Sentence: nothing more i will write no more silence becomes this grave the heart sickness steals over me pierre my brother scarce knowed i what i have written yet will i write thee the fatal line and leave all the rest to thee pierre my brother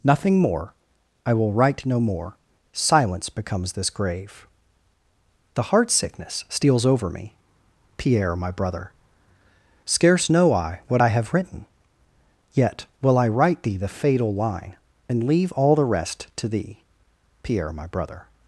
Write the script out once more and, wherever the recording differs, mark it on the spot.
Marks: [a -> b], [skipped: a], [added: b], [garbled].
nothing more i will write no more silence becomes this grave the heart sickness steals over me pierre my brother scarce [knowed -> know] i what i have written yet will i write thee the fatal line and leave all the rest to thee pierre my brother